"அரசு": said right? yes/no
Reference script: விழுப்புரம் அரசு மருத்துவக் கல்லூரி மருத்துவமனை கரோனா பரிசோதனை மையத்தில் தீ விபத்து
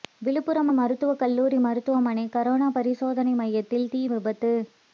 no